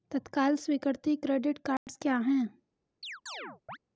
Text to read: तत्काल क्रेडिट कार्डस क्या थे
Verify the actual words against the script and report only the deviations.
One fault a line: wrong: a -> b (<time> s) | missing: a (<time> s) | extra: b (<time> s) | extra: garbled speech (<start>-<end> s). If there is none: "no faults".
extra: स्वीकृति (0.6 s)
wrong: थे -> हैं (2.2 s)